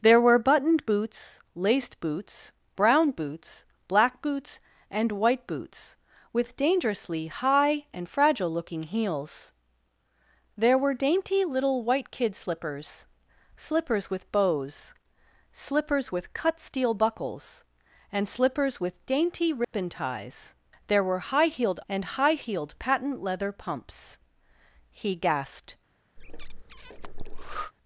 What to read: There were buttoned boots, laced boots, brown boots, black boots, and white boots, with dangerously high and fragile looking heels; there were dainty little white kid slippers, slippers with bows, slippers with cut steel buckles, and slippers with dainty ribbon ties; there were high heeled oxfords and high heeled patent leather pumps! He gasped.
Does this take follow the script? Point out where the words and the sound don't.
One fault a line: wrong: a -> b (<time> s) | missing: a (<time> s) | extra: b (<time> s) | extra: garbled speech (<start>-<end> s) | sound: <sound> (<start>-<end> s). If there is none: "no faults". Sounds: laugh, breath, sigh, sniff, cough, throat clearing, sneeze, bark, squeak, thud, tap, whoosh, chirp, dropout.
sound: dropout (19.6-19.7 s)
missing: oxfords (21.8 s)
sound: breath (26.2-27.7 s)